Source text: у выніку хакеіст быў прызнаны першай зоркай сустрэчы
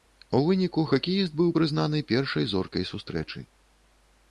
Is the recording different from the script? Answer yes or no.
no